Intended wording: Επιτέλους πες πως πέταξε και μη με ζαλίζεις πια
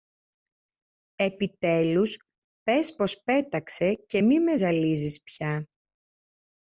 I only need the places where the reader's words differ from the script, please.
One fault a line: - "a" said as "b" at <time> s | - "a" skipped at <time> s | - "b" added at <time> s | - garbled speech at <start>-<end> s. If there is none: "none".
none